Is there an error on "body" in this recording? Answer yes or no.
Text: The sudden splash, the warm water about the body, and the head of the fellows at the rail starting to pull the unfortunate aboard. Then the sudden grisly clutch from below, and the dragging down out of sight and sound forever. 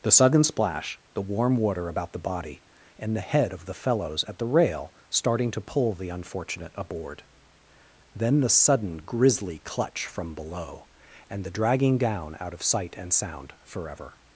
no